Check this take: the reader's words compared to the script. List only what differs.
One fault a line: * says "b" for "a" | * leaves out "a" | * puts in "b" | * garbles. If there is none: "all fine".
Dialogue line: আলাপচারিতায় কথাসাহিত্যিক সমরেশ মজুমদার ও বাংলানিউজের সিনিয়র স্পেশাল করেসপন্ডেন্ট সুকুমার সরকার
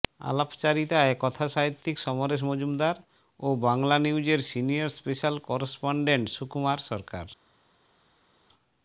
all fine